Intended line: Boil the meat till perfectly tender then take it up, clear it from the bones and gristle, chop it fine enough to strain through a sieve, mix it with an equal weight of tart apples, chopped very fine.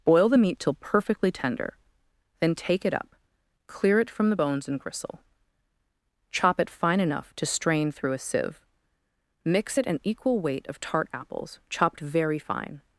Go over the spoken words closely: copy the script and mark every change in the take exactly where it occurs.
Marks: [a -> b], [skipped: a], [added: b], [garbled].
Boil the meat till perfectly tender then take it up, clear it from the bones and gristle, chop it fine enough to strain through a sieve, mix it [skipped: with] an equal weight of tart apples, chopped very fine.